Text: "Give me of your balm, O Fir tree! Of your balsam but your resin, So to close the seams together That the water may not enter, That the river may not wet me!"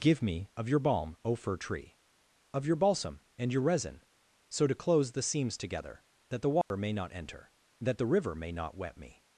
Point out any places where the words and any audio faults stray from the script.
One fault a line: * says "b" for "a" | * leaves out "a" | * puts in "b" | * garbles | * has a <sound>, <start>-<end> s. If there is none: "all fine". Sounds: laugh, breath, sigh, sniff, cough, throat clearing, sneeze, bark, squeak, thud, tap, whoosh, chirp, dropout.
* says "and" for "but"
* has a dropout, 6.6-6.7 s